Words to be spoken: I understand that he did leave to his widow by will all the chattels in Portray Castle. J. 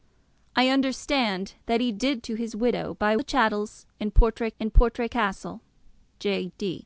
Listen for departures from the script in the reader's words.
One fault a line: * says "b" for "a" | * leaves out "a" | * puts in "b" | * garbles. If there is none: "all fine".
* leaves out "leave"
* says "the chattels in Portray" for "will all the chattels"